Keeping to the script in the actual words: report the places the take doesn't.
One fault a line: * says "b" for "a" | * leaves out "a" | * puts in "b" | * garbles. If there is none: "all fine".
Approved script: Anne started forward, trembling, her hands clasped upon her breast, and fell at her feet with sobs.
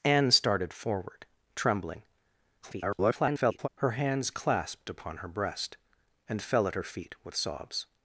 * garbles